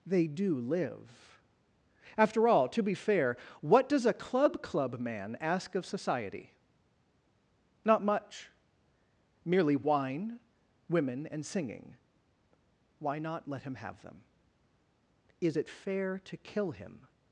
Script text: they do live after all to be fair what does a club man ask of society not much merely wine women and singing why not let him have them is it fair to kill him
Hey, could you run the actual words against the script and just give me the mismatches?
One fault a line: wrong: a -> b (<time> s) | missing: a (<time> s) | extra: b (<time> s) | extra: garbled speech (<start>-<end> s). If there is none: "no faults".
extra: club (4.6 s)